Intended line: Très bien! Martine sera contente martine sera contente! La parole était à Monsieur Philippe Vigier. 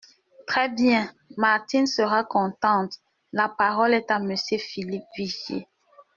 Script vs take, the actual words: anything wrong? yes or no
yes